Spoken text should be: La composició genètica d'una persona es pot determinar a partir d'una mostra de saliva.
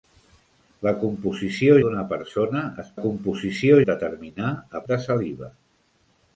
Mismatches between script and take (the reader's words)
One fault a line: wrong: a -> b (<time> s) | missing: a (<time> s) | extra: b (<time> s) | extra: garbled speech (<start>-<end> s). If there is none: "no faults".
missing: genètica (1.8 s)
wrong: pot -> composició (3.0 s)
missing: partir d'una mostra (4.8 s)